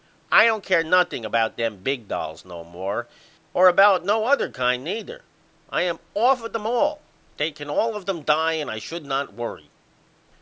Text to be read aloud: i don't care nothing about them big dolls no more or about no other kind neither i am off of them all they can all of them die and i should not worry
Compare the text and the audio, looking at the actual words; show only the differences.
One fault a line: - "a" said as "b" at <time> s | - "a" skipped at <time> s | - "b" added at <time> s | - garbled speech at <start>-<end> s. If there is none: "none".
none